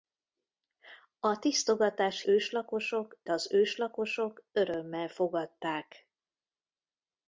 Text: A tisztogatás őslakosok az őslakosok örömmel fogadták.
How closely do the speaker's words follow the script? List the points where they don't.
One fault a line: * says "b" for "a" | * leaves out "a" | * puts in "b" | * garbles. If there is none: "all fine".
all fine